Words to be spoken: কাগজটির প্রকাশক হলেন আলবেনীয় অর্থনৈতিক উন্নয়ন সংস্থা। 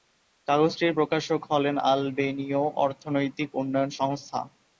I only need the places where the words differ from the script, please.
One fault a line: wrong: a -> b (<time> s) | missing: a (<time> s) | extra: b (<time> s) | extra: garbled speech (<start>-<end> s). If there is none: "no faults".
no faults